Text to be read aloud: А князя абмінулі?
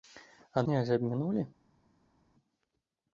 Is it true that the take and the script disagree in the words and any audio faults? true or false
false